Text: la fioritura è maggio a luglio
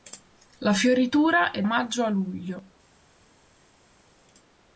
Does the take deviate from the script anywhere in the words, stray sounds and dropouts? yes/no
no